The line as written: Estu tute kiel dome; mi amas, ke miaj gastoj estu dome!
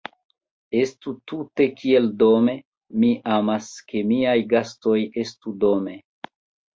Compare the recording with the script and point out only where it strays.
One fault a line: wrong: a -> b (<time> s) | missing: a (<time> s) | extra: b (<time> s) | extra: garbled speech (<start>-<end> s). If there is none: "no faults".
no faults